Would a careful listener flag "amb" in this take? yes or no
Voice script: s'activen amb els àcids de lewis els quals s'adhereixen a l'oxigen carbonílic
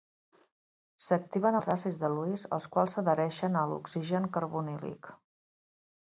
yes